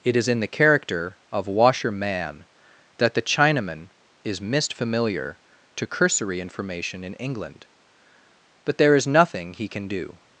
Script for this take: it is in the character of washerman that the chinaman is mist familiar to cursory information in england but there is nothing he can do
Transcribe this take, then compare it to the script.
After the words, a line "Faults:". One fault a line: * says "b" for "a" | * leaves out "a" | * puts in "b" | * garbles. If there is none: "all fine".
it is in the character of washerman that the chinaman is mist familiar to cursory information in england but there is nothing he can do
Faults:
all fine